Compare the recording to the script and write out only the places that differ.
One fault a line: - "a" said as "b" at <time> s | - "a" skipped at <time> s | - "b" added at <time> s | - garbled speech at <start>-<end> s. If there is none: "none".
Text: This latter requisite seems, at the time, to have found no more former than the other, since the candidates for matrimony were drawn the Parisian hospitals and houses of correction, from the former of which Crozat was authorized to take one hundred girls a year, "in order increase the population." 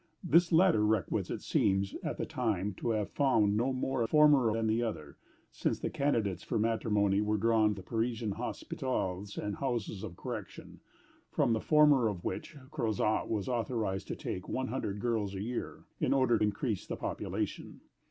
none